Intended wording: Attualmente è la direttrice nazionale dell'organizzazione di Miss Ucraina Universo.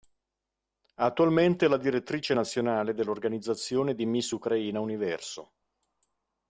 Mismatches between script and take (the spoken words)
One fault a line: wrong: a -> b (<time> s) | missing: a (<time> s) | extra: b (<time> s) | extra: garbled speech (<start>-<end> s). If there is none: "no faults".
no faults